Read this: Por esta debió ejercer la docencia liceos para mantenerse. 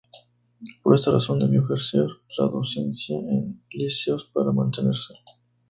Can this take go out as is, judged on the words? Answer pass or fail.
fail